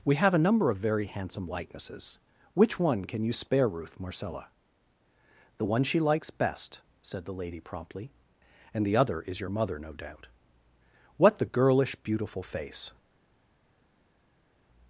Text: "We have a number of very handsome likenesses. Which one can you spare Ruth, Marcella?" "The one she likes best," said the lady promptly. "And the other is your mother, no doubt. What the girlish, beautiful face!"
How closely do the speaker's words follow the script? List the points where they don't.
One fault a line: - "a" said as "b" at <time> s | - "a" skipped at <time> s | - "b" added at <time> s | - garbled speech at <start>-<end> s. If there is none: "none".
none